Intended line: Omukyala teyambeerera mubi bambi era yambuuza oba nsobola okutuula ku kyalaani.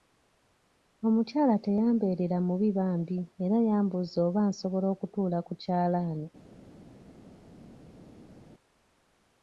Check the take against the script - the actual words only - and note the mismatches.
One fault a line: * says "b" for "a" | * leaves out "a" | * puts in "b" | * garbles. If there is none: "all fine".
all fine